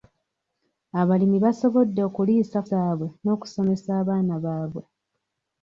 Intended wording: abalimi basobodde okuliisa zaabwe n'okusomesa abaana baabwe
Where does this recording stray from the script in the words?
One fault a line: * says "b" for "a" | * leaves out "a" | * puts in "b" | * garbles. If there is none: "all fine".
all fine